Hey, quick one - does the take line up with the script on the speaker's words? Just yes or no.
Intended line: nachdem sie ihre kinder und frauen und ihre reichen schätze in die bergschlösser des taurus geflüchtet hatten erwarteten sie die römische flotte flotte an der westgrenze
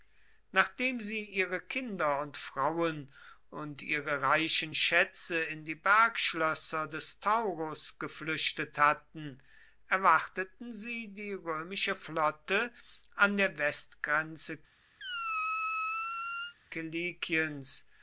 no